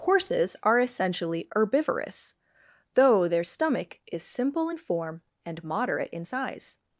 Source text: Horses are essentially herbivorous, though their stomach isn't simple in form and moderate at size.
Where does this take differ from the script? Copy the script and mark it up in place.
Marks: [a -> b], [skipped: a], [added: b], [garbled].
Horses are essentially herbivorous, though their stomach [isn't -> is] simple in form and moderate [at -> in] size.